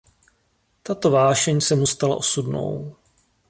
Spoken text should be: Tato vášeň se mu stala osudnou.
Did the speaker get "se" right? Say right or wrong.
right